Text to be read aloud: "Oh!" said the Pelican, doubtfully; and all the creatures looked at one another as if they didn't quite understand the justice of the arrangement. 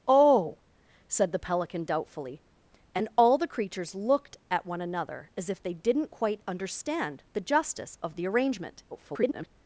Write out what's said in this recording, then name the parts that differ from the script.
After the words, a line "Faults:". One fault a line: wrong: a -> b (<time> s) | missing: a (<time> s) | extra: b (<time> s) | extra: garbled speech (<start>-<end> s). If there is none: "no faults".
"Oh!" said the Pelican, doubtfully; and all the creatures looked at one another as if they didn't quite understand the justice of the arrangement. [garbled]
Faults:
extra: garbled speech (8.9-9.5 s)